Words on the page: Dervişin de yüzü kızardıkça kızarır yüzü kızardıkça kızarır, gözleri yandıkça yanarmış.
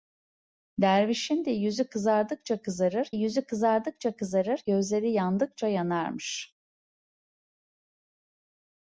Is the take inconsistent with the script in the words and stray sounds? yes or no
no